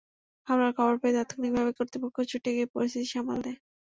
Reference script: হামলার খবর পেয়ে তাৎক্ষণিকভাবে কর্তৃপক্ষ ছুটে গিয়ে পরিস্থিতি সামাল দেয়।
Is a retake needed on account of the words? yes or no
no